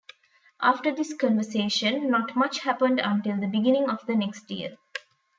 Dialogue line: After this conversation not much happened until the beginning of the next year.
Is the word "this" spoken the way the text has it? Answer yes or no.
yes